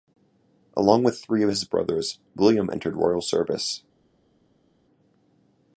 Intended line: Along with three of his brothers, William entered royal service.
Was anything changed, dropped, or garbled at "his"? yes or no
no